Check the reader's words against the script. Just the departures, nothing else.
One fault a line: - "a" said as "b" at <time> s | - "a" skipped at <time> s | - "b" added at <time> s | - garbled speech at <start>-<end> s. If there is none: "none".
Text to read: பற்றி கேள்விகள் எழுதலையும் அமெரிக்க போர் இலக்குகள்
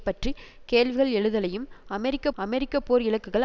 - "அமெரிக்க" added at 2.4 s